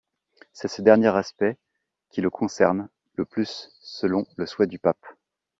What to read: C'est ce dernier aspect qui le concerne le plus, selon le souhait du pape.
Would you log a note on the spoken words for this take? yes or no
no